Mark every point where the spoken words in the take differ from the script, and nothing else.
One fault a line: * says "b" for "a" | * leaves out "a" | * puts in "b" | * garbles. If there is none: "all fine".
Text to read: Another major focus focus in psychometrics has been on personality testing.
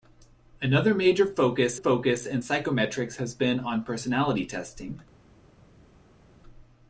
all fine